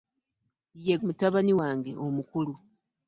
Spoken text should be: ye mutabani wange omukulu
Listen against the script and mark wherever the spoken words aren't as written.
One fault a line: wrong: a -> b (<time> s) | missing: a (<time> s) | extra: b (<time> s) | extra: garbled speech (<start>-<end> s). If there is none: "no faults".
no faults